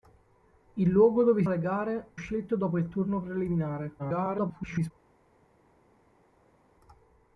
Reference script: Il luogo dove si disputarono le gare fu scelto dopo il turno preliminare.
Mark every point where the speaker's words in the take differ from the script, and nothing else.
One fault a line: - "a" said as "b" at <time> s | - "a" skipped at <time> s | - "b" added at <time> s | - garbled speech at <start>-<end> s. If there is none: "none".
- "si disputarono" skipped at 1.4 s
- "fu" skipped at 2.1 s
- garbled speech at 4.0-4.9 s